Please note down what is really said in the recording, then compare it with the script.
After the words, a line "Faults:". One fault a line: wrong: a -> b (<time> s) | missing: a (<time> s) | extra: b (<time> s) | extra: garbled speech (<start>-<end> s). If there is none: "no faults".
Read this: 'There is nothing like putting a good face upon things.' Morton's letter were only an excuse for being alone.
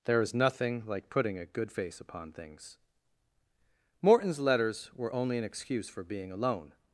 'There is nothing like putting a good face upon things.' Morton's letters were only an excuse for being alone.
Faults:
wrong: letter -> letters (4.4 s)